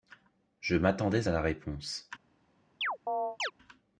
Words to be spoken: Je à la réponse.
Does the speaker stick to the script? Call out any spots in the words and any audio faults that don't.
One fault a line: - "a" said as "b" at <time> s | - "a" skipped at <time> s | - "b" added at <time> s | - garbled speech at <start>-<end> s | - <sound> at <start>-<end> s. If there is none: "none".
- "m'attendais" added at 0.8 s
- chirp at 2.8-3.5 s